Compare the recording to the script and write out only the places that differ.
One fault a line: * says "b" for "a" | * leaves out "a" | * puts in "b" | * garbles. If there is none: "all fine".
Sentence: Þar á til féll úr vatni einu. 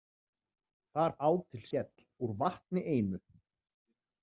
all fine